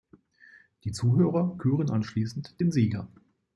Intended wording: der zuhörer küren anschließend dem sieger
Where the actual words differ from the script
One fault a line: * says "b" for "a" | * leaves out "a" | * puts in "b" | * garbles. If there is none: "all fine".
* says "die" for "der"
* says "den" for "dem"